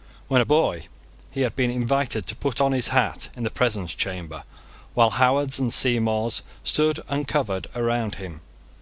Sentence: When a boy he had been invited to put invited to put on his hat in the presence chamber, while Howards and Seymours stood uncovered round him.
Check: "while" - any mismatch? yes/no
no